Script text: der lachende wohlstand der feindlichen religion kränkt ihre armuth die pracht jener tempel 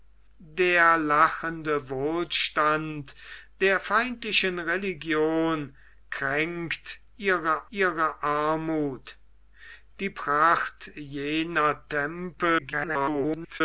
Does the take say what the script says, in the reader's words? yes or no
no